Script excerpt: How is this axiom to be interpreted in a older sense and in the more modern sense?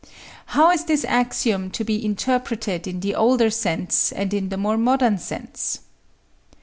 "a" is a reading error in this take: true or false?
true